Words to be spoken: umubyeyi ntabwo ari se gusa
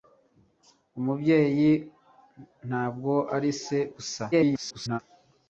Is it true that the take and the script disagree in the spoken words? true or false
true